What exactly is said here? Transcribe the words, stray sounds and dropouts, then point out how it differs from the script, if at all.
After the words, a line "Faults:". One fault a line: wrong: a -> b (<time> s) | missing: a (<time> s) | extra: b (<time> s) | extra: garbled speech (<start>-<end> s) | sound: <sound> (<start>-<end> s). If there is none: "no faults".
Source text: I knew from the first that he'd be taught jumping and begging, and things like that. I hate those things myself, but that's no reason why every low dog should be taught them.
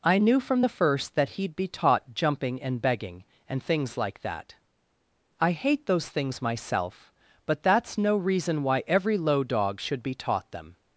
I knew from the first that he'd be taught jumping and begging, and things like that. I hate those things myself, but that's no reason why every low dog should be taught them.
Faults:
no faults